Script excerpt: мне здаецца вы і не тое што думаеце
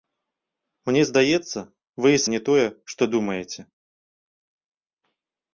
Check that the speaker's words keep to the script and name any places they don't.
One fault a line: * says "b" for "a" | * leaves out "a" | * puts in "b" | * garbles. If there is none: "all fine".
all fine